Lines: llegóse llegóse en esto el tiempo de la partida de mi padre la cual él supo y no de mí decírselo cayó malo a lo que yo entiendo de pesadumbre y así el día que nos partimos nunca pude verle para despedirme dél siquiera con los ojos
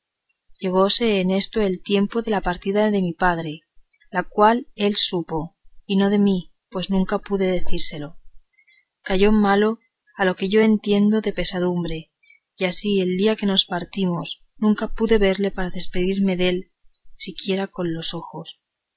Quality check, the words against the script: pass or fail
fail